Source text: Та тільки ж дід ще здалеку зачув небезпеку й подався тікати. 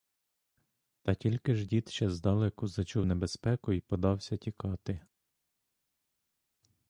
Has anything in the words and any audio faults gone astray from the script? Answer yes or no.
no